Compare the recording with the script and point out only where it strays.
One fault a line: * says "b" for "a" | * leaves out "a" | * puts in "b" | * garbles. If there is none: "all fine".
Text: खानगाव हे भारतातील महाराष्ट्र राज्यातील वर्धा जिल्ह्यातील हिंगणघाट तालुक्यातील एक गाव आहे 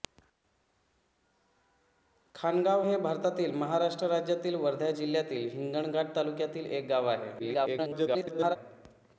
* garbles